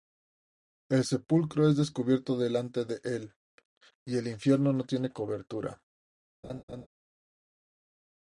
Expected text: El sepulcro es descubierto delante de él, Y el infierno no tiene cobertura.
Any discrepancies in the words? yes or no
no